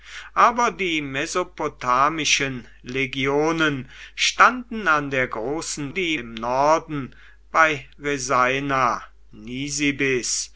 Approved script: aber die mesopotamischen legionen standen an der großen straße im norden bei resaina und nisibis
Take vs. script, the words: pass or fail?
fail